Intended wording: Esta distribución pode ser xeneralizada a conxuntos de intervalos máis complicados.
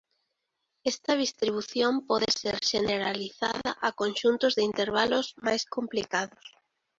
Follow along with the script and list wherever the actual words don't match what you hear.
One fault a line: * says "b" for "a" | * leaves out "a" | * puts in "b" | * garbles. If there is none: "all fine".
all fine